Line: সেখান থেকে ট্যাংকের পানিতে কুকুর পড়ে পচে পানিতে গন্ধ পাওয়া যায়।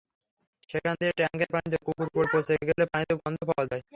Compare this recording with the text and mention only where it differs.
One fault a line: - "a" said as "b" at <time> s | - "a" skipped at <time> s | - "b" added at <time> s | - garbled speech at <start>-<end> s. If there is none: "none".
- "থেকে" said as "দিয়ে" at 1.0 s
- "গেলে" added at 2.7 s